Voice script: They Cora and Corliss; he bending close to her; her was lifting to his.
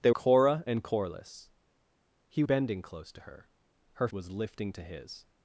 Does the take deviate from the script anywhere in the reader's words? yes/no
no